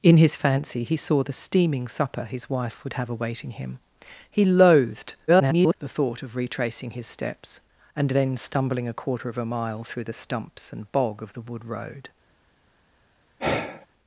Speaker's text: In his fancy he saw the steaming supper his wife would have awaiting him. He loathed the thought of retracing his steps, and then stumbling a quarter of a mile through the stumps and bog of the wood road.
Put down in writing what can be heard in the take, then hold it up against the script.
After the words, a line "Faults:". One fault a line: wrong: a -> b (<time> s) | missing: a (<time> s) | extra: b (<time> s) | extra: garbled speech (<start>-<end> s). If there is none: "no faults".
In his fancy he saw the steaming supper his wife would have awaiting him. He loathed [garbled] the thought of retracing his steps, and then stumbling a quarter of a mile through the stumps and bog of the wood road.
Faults:
extra: garbled speech (5.3-5.7 s)